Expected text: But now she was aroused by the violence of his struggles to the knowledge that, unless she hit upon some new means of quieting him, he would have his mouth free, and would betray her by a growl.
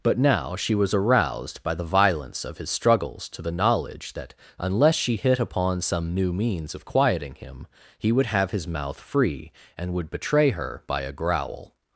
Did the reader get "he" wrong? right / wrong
right